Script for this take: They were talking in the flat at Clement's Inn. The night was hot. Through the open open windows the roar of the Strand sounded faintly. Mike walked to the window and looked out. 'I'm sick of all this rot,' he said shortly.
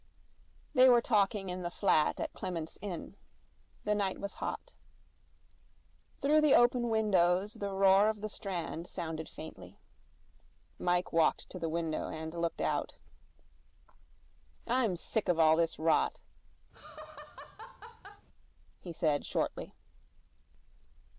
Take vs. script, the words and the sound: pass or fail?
fail